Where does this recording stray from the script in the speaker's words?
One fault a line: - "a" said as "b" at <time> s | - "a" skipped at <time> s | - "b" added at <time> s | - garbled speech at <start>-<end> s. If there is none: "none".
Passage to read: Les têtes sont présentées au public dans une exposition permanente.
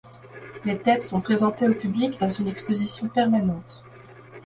none